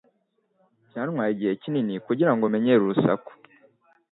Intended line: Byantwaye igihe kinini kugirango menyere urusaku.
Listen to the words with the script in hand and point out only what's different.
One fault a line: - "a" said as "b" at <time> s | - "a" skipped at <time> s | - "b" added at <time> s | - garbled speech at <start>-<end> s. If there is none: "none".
none